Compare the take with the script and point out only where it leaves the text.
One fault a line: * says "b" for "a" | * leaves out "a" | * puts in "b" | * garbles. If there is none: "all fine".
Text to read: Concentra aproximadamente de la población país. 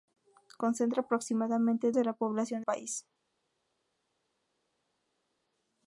all fine